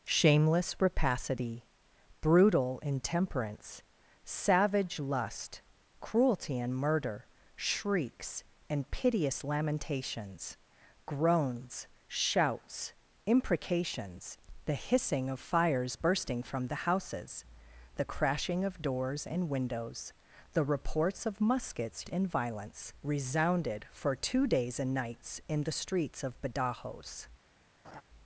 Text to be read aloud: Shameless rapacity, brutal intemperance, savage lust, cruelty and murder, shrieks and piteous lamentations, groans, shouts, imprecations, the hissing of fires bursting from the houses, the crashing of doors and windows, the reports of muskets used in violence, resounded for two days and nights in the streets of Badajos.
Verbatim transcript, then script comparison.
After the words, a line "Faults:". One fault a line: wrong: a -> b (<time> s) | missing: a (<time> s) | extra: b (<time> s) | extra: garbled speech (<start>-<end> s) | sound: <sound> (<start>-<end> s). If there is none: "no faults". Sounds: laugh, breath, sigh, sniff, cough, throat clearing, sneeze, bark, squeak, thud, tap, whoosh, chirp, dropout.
Shameless rapacity, brutal intemperance, savage lust, cruelty and murder, shrieks and piteous lamentations, groans, shouts, imprecations, the hissing of fires bursting from the houses, the crashing of doors and windows, the reports of muskets in violence, resounded for two days and nights in the streets of Badajos.
Faults:
missing: used (22.1 s)
sound: laugh (27.8-28.0 s)